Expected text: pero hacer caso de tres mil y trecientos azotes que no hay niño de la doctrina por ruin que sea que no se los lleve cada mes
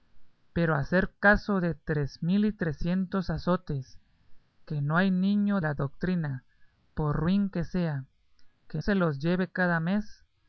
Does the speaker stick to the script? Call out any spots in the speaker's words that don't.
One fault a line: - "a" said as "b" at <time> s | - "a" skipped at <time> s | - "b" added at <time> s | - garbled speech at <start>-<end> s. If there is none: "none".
- "de" skipped at 5.6 s
- "no" skipped at 8.8 s